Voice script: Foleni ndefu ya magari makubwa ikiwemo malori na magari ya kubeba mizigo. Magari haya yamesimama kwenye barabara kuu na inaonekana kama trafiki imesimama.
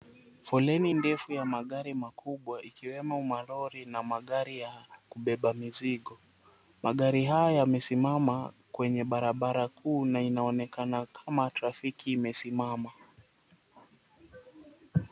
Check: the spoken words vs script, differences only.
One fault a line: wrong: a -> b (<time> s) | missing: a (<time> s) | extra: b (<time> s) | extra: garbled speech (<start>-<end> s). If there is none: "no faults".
no faults